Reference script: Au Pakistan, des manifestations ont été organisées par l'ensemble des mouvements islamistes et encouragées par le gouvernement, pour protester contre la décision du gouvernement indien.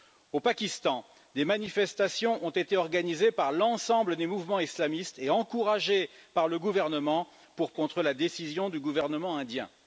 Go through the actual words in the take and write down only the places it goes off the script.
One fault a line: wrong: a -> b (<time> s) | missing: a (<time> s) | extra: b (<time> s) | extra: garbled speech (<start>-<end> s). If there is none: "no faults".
missing: protester (7.7 s)